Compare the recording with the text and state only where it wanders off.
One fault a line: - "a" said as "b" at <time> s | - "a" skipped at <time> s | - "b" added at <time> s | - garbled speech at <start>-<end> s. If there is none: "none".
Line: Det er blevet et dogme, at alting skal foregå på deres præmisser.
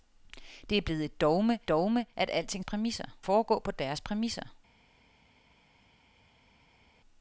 - "dogme" added at 1.7 s
- "skal" said as "præmisser" at 2.6 s